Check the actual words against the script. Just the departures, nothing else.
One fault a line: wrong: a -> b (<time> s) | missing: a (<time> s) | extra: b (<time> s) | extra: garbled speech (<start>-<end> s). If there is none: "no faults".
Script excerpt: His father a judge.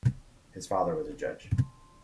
extra: was (0.9 s)